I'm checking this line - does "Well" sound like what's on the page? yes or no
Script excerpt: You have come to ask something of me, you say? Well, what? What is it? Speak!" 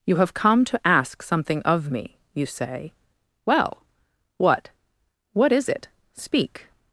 yes